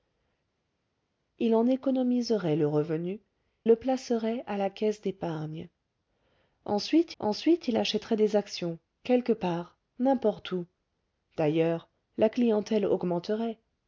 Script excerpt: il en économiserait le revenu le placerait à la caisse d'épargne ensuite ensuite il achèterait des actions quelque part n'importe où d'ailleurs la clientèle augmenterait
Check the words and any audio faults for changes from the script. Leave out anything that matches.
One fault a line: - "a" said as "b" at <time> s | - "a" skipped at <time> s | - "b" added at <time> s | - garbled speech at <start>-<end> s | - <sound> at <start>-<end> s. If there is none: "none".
none